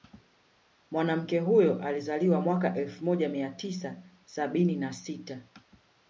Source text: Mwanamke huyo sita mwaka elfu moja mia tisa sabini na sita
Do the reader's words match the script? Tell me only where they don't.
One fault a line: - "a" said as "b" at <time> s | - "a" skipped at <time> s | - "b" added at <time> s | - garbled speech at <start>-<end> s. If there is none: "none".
- "sita" said as "alizaliwa" at 1.8 s